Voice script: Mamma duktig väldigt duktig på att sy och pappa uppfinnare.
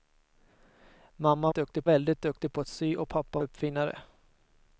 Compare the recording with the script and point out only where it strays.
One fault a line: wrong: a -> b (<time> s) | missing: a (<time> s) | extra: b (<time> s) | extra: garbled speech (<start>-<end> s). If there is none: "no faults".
no faults